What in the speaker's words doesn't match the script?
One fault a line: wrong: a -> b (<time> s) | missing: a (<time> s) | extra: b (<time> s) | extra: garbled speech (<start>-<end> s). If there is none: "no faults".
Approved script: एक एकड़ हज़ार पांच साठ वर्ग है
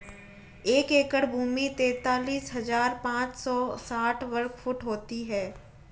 extra: भूमि तैंतालीस (1.2 s)
extra: सौ (3.4 s)
extra: फुट होती (4.6 s)